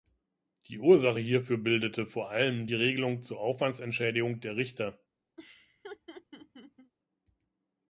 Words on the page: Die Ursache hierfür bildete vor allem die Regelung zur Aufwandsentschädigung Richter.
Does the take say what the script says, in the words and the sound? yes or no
no